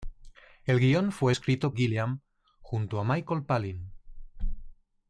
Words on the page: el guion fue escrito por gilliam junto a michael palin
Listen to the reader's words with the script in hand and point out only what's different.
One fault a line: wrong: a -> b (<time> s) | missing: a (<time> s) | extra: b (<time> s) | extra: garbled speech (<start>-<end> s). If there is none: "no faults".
missing: por (1.7 s)